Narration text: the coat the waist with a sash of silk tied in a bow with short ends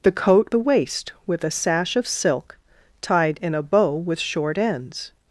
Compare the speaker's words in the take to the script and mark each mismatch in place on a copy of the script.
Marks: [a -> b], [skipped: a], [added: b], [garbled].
the coat the waist with a sash of silk tied in a bow with short ends